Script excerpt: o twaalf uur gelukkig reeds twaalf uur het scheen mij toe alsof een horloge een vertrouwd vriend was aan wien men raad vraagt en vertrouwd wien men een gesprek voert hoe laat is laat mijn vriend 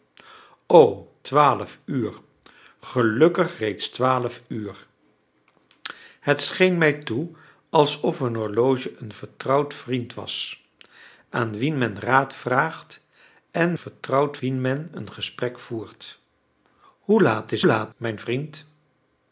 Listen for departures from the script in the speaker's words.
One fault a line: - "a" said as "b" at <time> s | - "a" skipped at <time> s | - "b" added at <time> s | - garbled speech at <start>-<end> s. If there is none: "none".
none